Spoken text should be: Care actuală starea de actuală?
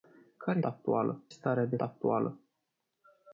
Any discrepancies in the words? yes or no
no